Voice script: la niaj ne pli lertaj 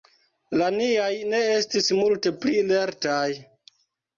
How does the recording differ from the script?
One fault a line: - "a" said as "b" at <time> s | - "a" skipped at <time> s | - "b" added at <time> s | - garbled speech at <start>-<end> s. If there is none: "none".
- "estis multe" added at 1.6 s